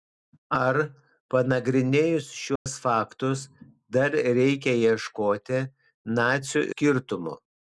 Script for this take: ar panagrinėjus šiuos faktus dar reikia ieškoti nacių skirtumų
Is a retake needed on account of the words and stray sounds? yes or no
yes